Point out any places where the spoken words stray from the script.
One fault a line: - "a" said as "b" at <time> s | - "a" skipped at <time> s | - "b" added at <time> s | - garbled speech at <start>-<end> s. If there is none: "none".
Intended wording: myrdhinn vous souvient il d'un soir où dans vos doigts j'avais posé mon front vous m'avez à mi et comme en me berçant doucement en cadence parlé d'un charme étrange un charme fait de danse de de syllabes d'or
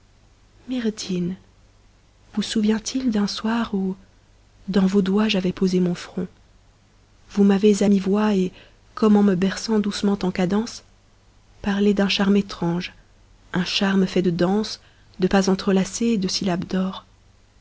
- "voix" added at 8.0 s
- "pas entrelacés et" added at 15.3 s